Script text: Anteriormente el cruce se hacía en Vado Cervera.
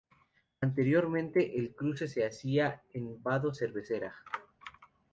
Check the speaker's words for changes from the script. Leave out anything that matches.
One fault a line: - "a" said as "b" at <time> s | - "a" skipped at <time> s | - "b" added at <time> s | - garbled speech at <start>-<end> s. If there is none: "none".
none